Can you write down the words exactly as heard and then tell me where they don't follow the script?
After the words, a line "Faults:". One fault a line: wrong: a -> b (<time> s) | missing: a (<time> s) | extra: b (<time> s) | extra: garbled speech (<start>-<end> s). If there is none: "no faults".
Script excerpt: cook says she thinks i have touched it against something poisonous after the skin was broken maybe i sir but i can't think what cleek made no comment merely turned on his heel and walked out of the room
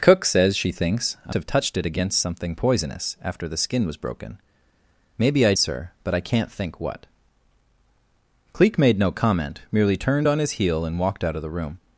cook says she thinks i have touched it against something poisonous after the skin was broken maybe i sir but i can't think what cleek made no comment merely turned on his heel and walked out of the room
Faults:
no faults